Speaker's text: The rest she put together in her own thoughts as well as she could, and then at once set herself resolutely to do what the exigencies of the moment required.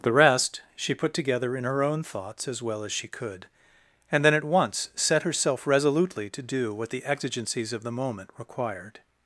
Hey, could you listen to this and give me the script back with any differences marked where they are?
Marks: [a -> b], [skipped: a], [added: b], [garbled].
The rest she put together in her own thoughts as well as she could, and then at once set herself resolutely to do what the exigencies of the moment required.